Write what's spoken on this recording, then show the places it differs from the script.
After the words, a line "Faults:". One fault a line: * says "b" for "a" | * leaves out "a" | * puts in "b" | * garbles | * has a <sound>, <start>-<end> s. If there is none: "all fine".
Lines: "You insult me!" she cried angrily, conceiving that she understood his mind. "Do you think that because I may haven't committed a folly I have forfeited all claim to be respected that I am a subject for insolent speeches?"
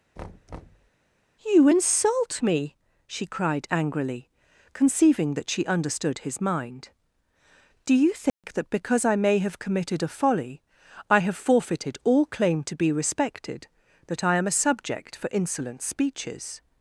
"You insult me!" she cried angrily, conceiving that she understood his mind. "Do you think that because I may have committed a folly I have forfeited all claim to be respected that I am a subject for insolent speeches?"
Faults:
* has a thud, 0.2-0.9 s
* has a dropout, 8.3-8.4 s
* says "have" for "haven't"